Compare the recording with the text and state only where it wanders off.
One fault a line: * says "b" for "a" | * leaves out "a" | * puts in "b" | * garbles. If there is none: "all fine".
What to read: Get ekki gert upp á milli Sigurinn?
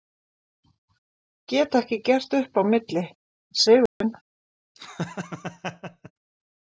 all fine